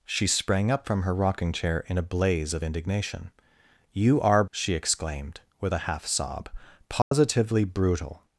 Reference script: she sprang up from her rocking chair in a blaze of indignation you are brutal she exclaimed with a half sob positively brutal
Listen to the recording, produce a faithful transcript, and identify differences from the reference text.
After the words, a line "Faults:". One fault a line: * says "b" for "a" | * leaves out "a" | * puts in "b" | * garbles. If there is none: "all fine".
she sprang up from her rocking chair in a blaze of indignation you are she exclaimed with a half sob positively brutal
Faults:
* leaves out "brutal"